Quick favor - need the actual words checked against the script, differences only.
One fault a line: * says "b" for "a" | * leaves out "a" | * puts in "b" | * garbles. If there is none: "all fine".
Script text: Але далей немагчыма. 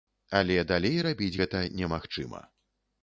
* puts in "рабіць гэта"